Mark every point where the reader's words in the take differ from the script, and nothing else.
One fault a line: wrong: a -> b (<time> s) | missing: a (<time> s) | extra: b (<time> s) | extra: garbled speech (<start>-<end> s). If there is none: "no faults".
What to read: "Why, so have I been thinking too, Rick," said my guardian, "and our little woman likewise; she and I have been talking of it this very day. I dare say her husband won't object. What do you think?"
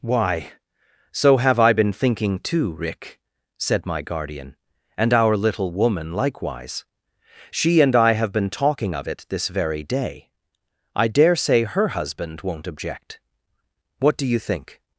no faults